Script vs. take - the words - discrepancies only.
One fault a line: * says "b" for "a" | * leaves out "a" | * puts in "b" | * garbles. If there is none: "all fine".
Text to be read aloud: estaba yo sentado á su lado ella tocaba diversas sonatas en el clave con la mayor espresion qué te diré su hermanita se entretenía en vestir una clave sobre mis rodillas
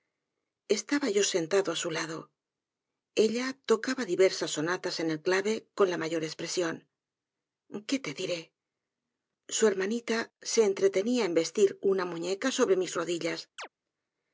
* says "muñeca" for "clave"